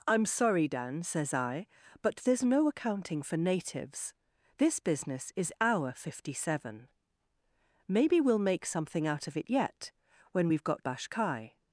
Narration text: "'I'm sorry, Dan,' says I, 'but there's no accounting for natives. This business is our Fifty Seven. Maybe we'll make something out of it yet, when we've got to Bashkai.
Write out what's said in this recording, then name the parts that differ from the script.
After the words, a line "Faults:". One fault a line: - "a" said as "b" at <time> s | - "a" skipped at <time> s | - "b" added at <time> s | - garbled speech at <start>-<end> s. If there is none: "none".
"'I'm sorry, Dan,' says I, 'but there's no accounting for natives. This business is our Fifty Seven. Maybe we'll make something out of it yet, when we've got Bashkai.
Faults:
- "to" skipped at 10.8 s